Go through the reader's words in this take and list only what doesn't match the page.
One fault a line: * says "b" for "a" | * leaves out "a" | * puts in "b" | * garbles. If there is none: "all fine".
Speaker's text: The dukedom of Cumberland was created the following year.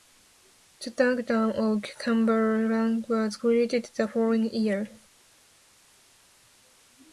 all fine